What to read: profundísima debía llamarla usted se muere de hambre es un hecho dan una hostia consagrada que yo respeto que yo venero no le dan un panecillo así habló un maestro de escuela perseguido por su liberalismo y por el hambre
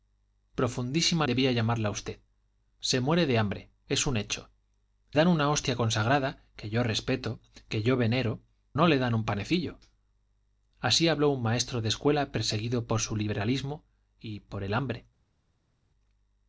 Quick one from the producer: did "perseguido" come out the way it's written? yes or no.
yes